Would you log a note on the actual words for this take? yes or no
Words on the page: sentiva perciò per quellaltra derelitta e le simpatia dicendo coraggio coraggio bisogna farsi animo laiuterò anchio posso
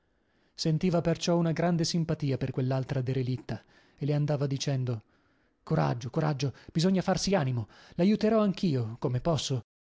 yes